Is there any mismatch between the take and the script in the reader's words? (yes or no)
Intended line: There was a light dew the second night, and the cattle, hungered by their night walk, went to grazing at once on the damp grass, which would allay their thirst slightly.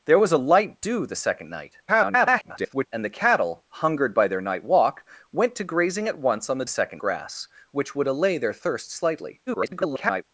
yes